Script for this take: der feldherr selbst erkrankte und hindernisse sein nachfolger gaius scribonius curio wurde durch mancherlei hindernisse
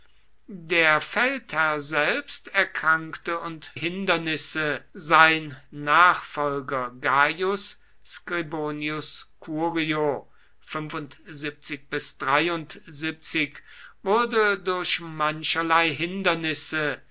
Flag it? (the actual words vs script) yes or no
no